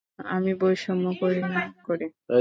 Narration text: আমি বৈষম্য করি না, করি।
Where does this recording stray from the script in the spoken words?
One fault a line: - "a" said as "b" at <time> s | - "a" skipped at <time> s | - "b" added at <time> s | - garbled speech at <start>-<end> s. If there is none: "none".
none